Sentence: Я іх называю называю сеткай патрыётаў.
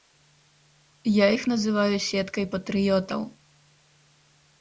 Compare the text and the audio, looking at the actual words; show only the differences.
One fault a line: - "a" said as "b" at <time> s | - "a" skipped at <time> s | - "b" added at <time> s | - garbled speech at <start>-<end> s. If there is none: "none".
- "называю" skipped at 2.0 s